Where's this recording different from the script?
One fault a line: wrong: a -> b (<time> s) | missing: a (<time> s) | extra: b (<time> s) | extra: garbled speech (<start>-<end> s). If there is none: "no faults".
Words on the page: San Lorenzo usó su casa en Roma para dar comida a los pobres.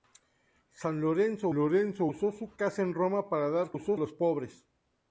extra: Lorenzo (1.5 s)
wrong: comida -> usó (3.7 s)